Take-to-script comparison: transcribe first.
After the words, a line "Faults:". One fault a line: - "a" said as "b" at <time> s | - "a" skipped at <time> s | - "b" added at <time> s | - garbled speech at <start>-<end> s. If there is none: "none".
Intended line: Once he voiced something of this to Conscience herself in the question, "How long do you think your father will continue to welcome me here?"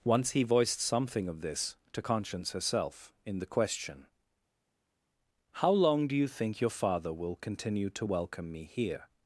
Once he voiced something of this to Conscience herself in the question, "How long do you think your father will continue to welcome me here?"
Faults:
none